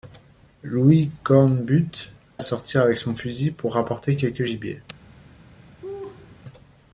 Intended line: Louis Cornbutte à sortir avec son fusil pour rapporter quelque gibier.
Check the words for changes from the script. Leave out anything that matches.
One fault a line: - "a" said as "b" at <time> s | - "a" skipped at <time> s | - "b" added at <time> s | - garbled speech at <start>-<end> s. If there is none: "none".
none